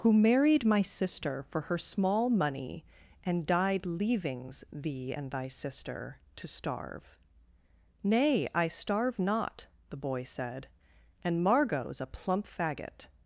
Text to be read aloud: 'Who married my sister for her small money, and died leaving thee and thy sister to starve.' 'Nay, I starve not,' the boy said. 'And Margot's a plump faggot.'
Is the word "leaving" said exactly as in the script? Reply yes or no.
no